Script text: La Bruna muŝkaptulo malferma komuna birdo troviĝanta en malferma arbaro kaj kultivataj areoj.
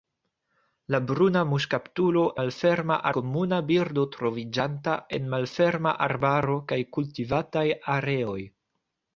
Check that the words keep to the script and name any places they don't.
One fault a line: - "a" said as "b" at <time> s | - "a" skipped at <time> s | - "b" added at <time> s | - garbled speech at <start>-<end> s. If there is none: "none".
none